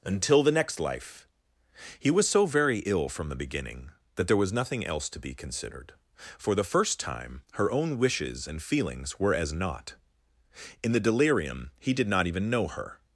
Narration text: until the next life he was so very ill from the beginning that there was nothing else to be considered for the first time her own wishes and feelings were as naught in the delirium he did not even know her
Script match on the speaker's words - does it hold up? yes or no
yes